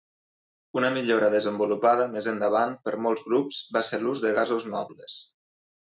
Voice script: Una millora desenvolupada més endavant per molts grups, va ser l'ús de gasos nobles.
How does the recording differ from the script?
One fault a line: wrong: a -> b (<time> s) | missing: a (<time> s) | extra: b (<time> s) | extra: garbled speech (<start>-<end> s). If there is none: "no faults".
no faults